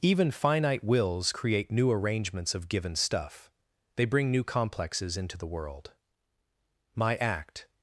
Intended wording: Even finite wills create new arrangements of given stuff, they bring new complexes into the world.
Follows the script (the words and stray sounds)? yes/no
no